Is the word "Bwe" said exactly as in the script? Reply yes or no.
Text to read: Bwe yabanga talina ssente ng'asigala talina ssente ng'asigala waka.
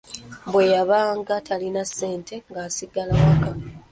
yes